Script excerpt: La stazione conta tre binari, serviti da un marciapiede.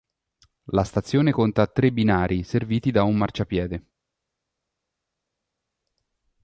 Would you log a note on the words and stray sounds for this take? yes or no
no